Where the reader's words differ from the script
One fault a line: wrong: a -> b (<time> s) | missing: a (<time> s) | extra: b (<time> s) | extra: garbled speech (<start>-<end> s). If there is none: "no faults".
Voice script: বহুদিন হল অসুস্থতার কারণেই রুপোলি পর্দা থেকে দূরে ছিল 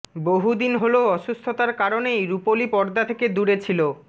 no faults